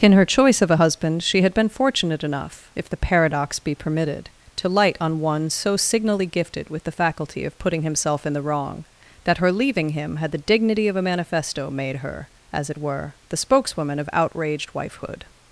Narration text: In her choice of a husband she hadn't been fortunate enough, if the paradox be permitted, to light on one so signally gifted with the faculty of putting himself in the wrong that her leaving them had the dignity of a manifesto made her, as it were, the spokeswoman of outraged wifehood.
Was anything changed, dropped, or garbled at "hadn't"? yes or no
yes